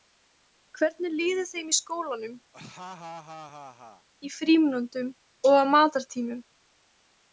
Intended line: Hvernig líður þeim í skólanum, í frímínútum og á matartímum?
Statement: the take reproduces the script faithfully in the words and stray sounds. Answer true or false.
false